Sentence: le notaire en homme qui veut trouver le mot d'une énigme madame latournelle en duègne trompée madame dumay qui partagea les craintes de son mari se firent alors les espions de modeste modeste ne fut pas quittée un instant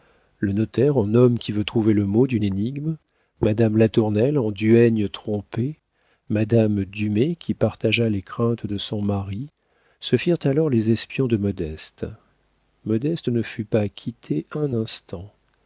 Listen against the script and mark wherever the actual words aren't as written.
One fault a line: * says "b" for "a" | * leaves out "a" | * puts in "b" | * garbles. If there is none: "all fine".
all fine